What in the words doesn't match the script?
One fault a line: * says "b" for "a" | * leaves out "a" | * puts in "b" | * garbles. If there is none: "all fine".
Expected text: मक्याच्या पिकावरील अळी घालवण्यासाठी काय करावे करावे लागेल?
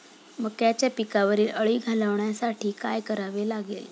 * leaves out "करावे"